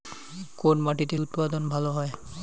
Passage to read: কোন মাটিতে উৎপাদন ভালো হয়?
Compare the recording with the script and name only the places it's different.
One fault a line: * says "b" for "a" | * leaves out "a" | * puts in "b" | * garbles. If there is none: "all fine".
all fine